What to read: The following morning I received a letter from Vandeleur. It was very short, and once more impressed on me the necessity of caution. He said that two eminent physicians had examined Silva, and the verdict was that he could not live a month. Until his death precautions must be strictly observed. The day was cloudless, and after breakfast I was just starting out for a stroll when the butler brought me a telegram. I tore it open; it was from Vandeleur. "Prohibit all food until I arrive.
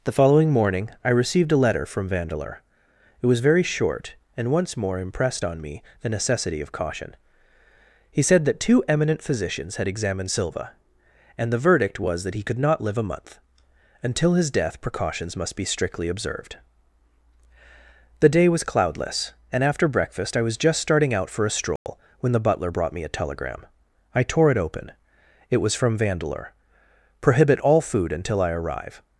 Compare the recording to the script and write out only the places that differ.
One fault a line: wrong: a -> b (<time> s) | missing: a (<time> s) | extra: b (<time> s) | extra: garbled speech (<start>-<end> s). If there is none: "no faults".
no faults